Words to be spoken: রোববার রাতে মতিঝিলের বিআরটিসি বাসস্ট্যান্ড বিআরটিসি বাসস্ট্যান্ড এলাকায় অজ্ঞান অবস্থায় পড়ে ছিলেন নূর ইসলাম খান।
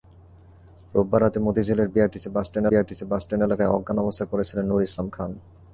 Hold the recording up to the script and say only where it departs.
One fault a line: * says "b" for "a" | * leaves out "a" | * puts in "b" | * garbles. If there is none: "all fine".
all fine